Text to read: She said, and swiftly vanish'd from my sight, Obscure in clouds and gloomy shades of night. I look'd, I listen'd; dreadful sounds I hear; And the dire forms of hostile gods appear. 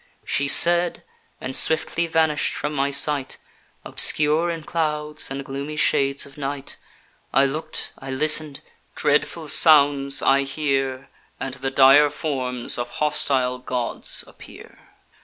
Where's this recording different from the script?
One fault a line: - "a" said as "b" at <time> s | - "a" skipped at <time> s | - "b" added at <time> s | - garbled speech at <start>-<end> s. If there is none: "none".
none